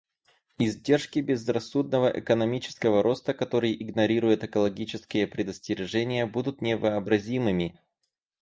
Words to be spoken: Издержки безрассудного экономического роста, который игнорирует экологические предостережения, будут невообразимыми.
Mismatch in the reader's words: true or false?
false